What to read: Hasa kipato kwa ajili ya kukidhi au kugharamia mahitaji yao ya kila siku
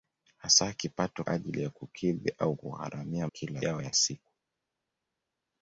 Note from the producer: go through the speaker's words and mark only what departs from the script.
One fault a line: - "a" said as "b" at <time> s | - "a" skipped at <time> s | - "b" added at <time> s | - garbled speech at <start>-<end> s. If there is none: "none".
- "kwa" skipped at 1.2 s
- "mahitaji" said as "kila" at 3.2 s
- "kila" skipped at 3.9 s